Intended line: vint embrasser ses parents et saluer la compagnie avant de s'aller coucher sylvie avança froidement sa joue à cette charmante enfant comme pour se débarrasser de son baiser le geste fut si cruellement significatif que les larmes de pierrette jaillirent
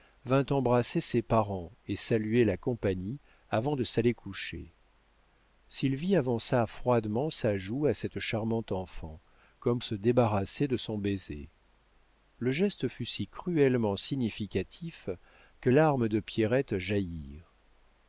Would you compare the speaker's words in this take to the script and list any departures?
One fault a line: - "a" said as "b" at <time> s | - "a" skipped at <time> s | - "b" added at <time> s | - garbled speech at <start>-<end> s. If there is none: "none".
- "pour" skipped at 9.8 s
- "les" skipped at 15.7 s